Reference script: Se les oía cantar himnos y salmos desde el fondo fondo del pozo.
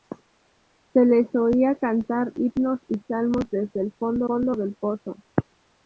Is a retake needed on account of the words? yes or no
no